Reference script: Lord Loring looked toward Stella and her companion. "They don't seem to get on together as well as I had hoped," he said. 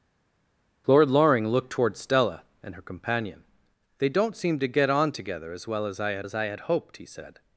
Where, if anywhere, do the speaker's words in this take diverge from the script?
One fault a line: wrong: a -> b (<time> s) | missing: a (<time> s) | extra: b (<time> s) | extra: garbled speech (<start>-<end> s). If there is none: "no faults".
extra: as I had (6.2 s)